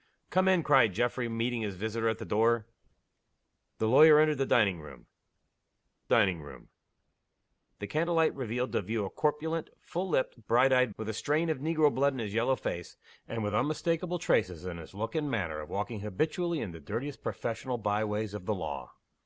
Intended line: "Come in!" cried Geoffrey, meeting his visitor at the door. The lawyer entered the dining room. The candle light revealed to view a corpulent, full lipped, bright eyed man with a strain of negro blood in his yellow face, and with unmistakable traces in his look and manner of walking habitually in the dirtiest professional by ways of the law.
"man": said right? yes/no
no